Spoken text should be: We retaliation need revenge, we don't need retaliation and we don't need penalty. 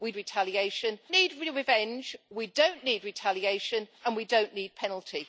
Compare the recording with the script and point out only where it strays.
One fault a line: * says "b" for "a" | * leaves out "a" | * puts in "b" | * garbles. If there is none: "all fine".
all fine